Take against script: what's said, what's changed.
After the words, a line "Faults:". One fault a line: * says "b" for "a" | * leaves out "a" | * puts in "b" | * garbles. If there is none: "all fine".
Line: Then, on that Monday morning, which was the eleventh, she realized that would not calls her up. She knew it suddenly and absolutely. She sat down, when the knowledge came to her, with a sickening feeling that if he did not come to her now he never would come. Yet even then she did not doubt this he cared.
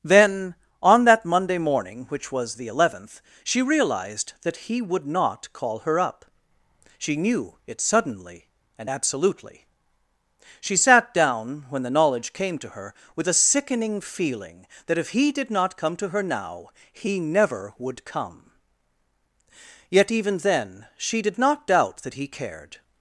Then, on that Monday morning, which was the eleventh, she realized that he would not call her up. She knew it suddenly and absolutely. She sat down, when the knowledge came to her, with a sickening feeling that if he did not come to her now he never would come. Yet even then she did not doubt that he cared.
Faults:
* puts in "he"
* says "call" for "calls"
* says "that" for "this"